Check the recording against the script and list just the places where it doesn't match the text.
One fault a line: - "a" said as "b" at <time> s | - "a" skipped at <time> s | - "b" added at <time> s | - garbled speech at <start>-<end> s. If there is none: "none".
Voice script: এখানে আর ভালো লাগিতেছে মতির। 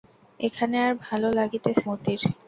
none